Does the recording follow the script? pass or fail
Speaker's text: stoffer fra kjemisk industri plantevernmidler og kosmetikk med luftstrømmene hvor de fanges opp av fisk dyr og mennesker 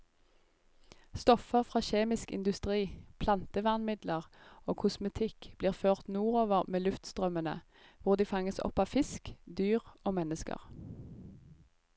fail